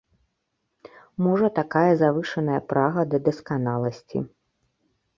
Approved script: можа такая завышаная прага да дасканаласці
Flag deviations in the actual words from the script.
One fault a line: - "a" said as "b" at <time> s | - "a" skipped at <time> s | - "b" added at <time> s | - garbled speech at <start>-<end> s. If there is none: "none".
none